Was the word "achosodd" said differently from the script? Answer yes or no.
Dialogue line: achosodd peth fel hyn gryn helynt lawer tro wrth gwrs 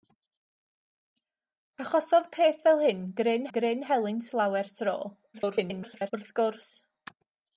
no